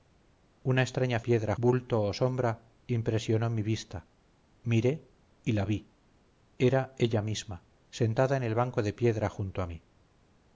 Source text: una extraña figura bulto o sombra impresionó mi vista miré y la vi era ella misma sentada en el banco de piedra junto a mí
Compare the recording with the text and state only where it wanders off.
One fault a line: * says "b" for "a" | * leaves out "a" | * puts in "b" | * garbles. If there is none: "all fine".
* says "piedra" for "figura"